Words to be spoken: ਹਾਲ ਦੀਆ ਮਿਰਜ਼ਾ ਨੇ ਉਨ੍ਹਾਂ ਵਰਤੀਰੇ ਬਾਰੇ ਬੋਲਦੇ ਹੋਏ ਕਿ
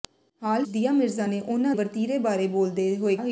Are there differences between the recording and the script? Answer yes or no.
no